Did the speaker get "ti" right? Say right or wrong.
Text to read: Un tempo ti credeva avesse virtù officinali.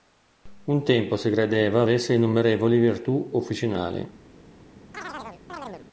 wrong